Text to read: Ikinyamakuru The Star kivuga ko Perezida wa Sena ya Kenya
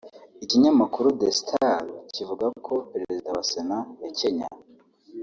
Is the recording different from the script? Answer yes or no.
no